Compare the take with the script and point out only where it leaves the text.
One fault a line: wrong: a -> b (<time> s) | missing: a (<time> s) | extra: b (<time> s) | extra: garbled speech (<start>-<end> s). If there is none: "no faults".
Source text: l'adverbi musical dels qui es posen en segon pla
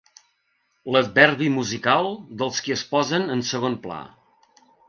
no faults